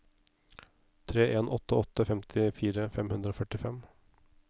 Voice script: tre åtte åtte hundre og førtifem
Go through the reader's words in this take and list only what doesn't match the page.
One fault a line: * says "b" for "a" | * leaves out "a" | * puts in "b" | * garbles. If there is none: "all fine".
* puts in "en"
* puts in "femtifire fem"